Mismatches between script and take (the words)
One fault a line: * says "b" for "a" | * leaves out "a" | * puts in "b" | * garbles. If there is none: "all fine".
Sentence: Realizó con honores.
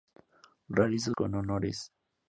all fine